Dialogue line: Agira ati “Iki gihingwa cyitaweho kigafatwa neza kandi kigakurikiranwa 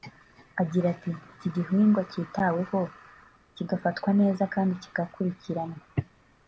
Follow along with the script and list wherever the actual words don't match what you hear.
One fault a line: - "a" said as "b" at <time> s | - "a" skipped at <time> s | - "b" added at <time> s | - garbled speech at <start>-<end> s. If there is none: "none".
none